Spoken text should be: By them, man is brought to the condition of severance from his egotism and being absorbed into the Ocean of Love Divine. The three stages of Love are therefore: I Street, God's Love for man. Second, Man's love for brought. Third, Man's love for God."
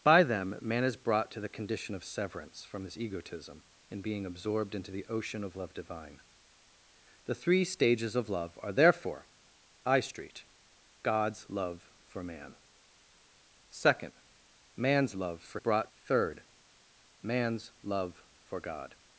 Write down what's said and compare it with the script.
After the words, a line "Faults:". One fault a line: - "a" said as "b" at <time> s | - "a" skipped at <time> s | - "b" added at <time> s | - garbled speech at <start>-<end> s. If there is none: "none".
By them, man is brought to the condition of severance from his egotism and being absorbed into the Ocean of Love Divine. The three stages of Love are therefore: I Street, God's Love for man. Second, Man's love for brought. Third, Man's love for God."
Faults:
none